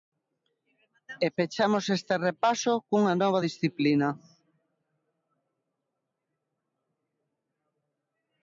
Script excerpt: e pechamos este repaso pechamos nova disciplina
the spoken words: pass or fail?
fail